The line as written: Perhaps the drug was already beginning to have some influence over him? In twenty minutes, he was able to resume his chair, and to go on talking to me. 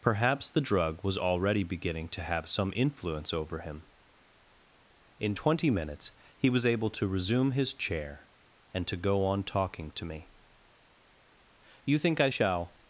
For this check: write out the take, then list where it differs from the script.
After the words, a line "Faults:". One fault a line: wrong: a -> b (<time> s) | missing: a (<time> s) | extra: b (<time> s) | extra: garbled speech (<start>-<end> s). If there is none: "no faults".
Perhaps the drug was already beginning to have some influence over him? In twenty minutes, he was able to resume his chair, and to go on talking to me. "You think I shall
Faults:
extra: You think I shall (11.8 s)